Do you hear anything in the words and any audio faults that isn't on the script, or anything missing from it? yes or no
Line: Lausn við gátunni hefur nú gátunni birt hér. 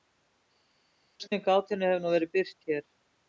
yes